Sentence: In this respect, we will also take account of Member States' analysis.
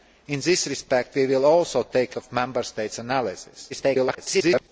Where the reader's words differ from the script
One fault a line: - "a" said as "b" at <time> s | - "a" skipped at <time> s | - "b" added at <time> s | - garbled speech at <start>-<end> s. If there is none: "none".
- "account" skipped at 2.1 s
- garbled speech at 3.7-4.7 s